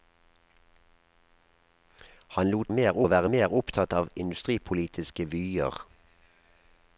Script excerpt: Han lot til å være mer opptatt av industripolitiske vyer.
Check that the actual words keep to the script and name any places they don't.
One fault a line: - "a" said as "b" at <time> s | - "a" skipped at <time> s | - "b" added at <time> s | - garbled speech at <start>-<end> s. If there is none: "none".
- "til" said as "mer" at 2.7 s